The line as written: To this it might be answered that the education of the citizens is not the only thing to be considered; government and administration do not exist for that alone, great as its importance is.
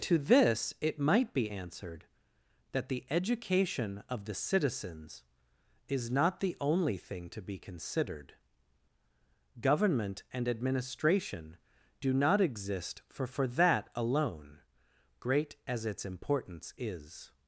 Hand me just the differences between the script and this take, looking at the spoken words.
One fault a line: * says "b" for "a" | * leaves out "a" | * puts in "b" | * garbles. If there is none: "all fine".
* puts in "for"